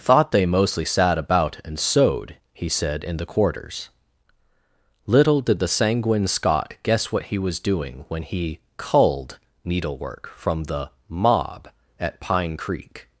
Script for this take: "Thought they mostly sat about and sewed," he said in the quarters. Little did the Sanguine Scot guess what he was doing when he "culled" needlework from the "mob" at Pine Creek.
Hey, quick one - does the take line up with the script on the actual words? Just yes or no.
yes